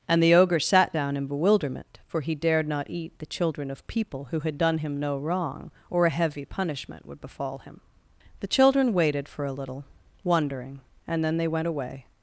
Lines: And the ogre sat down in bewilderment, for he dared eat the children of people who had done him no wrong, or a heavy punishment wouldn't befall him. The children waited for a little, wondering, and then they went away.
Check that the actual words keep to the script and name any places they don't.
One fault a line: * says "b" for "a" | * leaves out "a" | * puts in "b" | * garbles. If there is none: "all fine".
* puts in "not"
* says "would" for "wouldn't"